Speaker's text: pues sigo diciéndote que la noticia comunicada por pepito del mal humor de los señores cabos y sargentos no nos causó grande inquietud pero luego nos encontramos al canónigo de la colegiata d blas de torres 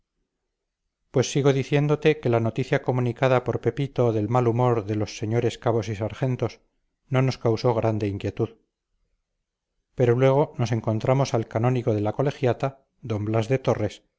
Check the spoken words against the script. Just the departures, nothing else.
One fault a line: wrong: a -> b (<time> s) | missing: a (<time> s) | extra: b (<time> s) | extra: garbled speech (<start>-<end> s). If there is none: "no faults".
no faults